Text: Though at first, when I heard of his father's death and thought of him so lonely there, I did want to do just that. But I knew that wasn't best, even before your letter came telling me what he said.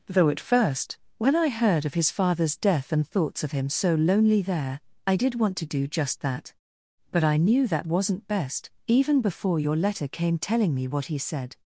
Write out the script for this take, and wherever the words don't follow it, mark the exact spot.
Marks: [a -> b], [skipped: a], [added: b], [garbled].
Though at first, when I heard of his father's death and [thought -> thoughts] of him so lonely there, I did want to do just that. But I knew that wasn't best, even before your letter came telling me what he said.